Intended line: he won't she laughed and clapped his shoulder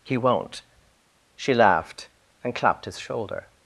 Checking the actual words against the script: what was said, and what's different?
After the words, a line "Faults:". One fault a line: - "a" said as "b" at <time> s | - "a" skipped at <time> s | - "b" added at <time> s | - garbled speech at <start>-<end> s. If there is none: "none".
he won't she laughed and clapped his shoulder
Faults:
none